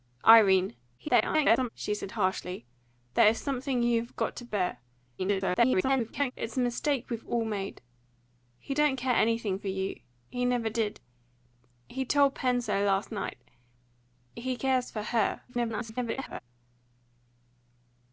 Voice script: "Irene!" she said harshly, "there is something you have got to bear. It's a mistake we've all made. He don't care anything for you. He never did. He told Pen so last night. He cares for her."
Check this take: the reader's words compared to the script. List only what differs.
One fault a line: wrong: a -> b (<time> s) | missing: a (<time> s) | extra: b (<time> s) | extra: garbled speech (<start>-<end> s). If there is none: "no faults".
extra: garbled speech (1.0-1.7 s)
extra: garbled speech (5.2-6.3 s)
extra: garbled speech (15.5-16.4 s)